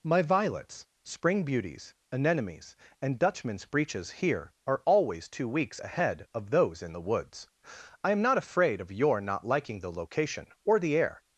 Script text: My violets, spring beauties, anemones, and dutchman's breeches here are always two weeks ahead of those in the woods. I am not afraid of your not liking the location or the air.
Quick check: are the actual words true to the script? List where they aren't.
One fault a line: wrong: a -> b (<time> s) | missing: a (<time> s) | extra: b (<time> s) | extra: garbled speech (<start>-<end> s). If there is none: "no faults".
no faults